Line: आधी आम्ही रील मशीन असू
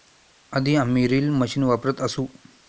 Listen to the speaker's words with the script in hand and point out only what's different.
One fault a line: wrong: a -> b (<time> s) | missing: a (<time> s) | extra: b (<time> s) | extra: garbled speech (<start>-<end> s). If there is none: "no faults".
extra: वापरत (1.6 s)